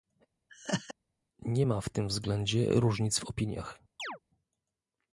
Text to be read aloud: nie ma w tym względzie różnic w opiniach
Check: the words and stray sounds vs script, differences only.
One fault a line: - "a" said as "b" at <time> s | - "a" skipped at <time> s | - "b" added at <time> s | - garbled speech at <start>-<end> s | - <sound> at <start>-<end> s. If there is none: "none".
- laugh at 0.5-0.9 s
- chirp at 4.0-4.2 s